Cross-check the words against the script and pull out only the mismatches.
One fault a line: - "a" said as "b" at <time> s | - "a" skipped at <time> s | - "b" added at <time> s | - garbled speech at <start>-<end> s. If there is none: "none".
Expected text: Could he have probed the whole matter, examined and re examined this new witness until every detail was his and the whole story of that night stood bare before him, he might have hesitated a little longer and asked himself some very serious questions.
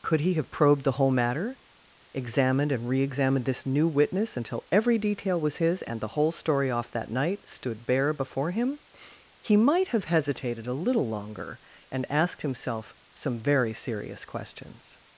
- "of" said as "off" at 6.7 s